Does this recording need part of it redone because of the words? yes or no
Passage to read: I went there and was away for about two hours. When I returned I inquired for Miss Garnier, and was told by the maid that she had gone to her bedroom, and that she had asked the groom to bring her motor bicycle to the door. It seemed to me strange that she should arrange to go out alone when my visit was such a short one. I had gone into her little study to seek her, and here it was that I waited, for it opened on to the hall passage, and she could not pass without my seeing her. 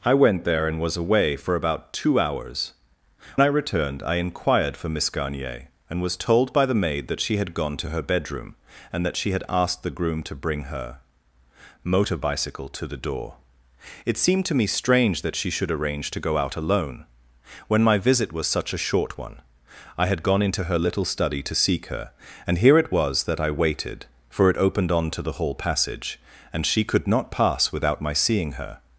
yes